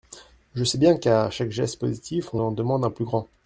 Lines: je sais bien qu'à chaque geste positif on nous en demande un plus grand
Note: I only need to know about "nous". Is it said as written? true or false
false